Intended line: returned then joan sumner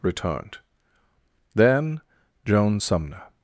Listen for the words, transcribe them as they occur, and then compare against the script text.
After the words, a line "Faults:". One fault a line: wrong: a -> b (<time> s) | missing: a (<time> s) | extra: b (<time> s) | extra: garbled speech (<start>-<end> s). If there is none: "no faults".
returned then joan sumner
Faults:
no faults